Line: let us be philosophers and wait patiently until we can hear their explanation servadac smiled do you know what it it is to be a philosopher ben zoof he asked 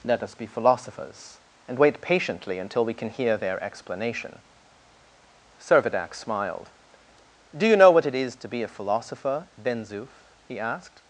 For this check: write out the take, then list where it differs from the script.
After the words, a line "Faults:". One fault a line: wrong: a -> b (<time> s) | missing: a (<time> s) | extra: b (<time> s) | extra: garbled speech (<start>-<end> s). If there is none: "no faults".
let us be philosophers and wait patiently until we can hear their explanation servadac smiled do you know what it is to be a philosopher ben zoof he asked
Faults:
missing: it (8.2 s)